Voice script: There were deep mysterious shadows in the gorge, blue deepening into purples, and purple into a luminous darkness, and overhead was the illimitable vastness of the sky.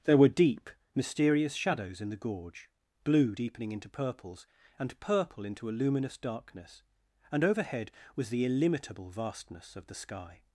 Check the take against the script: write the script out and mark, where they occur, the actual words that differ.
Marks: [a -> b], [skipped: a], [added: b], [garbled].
There were deep mysterious shadows in the gorge, blue deepening into purples, and purple into a luminous darkness, and overhead was the illimitable vastness of the sky.